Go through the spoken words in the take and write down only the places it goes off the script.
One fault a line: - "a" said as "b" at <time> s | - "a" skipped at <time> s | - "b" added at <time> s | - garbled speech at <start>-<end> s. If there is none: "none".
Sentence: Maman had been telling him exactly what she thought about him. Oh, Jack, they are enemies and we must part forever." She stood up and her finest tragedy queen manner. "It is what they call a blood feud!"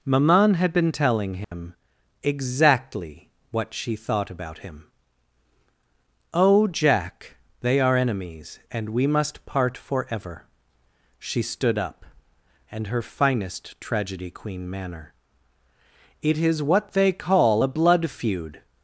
none